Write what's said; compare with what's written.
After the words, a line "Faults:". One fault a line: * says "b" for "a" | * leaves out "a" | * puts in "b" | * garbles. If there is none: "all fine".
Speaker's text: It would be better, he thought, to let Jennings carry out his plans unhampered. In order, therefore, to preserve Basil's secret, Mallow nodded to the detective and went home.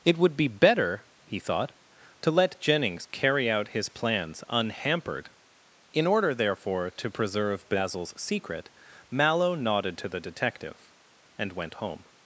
It would be better, he thought, to let Jennings carry out his plans unhampered. In order, therefore, to preserve Basil's secret, Mallow nodded to the detective and went home.
Faults:
all fine